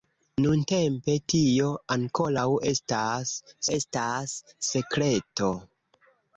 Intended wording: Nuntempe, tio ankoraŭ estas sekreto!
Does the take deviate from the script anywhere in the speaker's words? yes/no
yes